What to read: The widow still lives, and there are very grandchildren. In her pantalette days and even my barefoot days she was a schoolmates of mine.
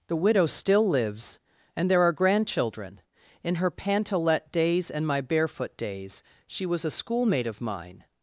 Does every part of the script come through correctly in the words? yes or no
no